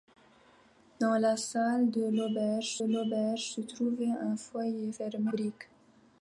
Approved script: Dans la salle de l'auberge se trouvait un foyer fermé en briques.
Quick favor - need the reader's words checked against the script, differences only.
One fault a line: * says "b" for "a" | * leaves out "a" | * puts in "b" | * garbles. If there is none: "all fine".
* puts in "l'auberge"
* leaves out "en"